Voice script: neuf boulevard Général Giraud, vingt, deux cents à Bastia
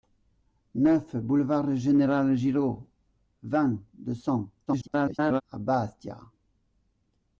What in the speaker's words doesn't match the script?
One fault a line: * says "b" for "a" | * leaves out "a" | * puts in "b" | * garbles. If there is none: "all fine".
* garbles